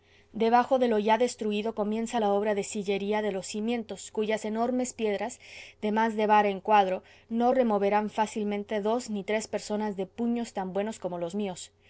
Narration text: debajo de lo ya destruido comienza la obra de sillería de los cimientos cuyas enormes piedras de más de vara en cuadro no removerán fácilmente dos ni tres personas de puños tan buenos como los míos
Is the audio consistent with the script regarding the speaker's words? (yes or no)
yes